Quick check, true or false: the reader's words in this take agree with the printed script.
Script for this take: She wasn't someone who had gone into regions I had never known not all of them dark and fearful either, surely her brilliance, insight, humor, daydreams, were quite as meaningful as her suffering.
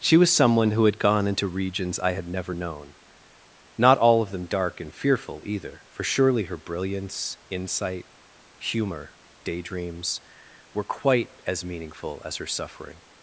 false